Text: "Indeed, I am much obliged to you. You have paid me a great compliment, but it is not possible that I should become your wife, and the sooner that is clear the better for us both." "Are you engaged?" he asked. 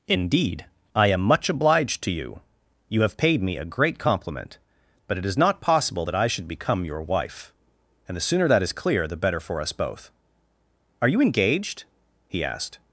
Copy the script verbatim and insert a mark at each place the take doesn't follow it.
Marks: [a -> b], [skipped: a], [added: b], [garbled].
"Indeed, I am much obliged to you. You have paid me a great compliment, but it is not possible that I should become your wife, and the sooner that is clear the better for us both." "Are you engaged?" he asked.